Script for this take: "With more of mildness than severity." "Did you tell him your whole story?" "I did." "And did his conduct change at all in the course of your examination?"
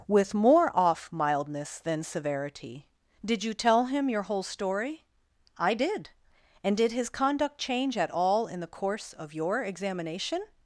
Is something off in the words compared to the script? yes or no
yes